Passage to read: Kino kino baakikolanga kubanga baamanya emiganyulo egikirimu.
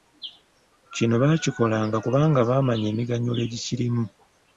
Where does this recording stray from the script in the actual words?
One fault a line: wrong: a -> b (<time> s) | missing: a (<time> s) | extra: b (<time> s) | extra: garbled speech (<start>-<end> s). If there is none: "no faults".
missing: kino (1.1 s)